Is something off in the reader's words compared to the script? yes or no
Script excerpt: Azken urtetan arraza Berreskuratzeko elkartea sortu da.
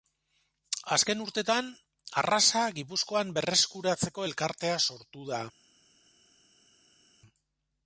yes